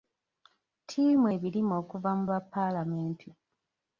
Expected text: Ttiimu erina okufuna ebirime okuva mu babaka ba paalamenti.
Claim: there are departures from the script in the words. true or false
true